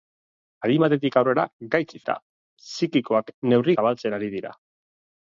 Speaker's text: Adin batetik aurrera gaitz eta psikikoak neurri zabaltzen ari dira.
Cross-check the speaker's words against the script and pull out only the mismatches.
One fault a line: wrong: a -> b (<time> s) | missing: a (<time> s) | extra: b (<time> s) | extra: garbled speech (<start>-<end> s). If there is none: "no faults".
no faults